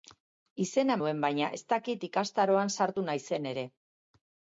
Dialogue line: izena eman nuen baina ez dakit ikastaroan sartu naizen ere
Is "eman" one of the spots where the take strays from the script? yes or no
yes